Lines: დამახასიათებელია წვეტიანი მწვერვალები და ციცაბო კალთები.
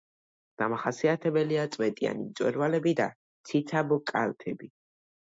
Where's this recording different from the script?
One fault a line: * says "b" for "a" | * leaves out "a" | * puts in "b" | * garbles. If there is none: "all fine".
all fine